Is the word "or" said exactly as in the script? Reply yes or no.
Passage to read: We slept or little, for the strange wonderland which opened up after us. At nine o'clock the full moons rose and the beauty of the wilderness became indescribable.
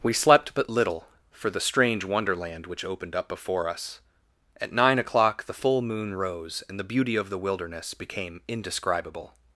no